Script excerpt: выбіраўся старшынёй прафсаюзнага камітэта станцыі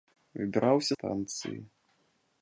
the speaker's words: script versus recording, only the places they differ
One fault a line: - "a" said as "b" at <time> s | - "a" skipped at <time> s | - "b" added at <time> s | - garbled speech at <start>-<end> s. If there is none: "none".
- "старшынёй прафсаюзнага камітэта" skipped at 0.9 s